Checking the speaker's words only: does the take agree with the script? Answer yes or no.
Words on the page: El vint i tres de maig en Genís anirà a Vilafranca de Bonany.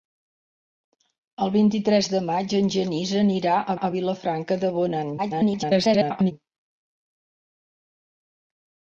no